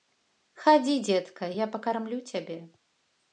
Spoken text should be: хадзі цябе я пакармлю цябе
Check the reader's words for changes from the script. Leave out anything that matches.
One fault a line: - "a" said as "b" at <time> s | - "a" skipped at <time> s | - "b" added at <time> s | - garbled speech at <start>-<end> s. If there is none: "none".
- "цябе" said as "дзетка" at 1.1 s